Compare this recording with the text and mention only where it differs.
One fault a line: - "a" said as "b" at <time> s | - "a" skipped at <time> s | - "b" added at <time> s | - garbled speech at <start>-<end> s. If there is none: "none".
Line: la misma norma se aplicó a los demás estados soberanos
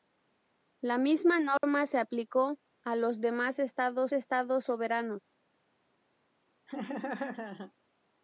- "estados" added at 4.1 s